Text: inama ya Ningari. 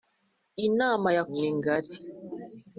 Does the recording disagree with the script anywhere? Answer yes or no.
no